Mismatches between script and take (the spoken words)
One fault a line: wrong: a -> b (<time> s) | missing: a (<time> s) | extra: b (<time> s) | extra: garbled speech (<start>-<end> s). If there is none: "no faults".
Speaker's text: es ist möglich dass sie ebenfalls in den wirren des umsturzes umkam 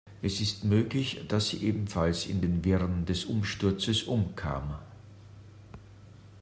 no faults